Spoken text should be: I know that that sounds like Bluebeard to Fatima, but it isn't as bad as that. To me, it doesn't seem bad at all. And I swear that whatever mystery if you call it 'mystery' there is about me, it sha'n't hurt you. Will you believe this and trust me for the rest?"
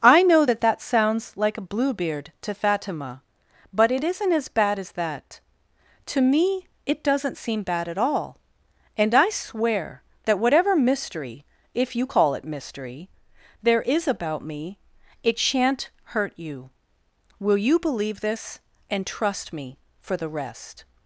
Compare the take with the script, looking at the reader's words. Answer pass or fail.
fail